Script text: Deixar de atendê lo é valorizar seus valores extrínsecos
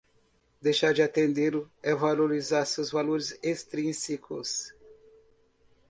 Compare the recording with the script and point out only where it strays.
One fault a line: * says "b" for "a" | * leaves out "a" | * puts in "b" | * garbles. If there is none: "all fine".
all fine